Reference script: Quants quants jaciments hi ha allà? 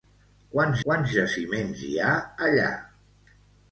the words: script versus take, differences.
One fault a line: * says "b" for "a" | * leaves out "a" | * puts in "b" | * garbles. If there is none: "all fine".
all fine